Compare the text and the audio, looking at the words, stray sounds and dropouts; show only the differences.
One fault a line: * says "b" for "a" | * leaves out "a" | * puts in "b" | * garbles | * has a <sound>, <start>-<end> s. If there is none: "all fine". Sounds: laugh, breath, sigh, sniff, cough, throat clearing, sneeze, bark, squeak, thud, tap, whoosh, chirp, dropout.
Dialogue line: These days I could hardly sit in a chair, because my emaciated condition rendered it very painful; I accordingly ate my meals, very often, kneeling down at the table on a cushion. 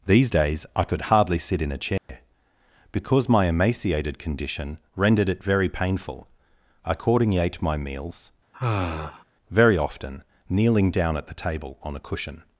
* has a dropout, 2.0-2.1 s
* has a sigh, 8.5-9.2 s